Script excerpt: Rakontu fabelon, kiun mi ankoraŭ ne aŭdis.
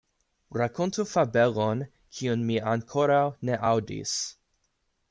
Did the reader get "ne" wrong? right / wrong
right